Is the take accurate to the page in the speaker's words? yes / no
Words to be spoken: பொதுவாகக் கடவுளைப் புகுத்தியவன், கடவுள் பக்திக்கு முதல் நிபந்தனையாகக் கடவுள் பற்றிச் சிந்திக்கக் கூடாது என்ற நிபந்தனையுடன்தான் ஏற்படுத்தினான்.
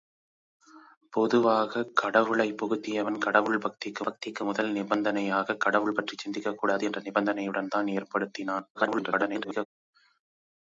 no